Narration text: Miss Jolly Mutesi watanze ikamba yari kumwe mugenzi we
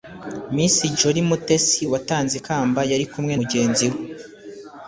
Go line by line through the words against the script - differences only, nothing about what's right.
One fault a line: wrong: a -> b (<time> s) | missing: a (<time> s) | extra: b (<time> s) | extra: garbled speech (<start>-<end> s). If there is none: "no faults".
no faults